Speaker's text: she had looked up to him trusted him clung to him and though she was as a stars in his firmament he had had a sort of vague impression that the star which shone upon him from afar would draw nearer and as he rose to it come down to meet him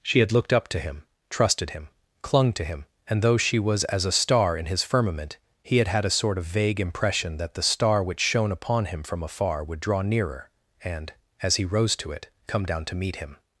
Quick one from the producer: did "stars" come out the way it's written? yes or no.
no